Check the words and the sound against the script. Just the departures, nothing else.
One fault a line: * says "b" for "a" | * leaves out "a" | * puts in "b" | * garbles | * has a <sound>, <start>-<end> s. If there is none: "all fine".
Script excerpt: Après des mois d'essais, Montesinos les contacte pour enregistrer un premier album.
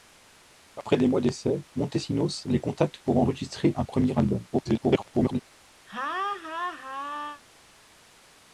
* garbles
* has a laugh, 5.9-7.4 s